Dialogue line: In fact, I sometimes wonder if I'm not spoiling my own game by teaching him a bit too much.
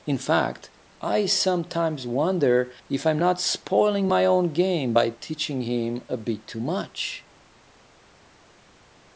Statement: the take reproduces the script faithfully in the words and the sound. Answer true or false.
true